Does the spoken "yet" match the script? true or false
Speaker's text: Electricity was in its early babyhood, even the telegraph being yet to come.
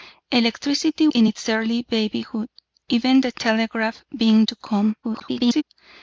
false